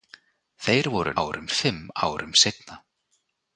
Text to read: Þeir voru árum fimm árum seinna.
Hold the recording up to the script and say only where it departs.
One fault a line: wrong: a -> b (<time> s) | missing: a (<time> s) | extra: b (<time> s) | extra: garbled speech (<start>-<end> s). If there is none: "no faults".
no faults